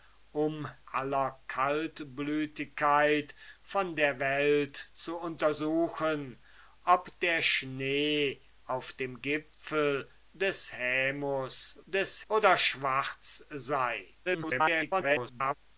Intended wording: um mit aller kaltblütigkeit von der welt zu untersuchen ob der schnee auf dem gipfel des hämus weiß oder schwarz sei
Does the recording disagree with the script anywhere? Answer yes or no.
yes